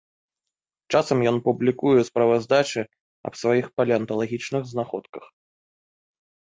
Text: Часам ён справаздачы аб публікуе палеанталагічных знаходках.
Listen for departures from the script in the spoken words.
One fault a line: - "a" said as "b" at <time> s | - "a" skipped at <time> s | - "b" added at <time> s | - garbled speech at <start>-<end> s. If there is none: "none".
- "публікуе" added at 1.5 s
- "публікуе" said as "сваіх" at 3.4 s